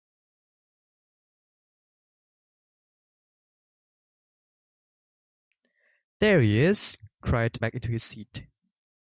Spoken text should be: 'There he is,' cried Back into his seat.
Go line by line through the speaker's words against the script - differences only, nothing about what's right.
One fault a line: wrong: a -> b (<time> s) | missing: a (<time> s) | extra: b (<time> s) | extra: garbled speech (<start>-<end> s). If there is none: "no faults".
no faults